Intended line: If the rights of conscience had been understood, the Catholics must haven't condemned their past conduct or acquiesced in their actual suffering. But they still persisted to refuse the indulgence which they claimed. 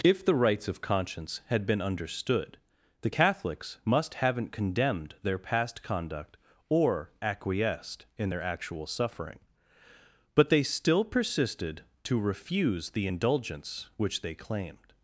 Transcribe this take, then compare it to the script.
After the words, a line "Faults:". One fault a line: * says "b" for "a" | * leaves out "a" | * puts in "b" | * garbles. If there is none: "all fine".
If the rights of conscience had been understood, the Catholics must haven't condemned their past conduct or acquiesced in their actual suffering. But they still persisted to refuse the indulgence which they claimed.
Faults:
all fine